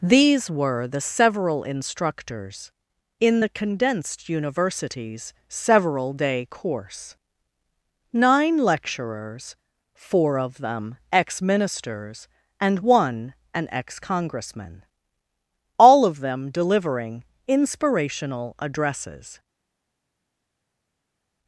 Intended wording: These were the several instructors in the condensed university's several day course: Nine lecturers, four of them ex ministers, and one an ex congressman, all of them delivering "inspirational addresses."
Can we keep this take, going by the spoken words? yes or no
yes